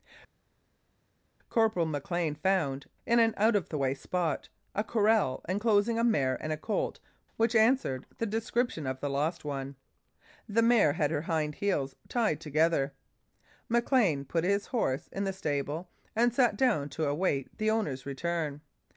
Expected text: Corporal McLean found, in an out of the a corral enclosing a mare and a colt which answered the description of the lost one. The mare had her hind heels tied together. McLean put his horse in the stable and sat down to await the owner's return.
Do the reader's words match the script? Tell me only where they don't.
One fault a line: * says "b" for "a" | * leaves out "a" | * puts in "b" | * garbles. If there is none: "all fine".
* puts in "way spot"